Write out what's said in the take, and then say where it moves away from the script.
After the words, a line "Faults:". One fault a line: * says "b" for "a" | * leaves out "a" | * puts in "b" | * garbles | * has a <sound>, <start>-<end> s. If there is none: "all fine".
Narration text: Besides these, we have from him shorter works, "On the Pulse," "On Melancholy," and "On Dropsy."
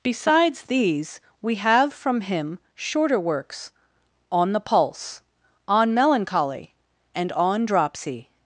Besides these, we have from him shorter works, "On the Pulse," "On Melancholy," and "On Dropsy."
Faults:
all fine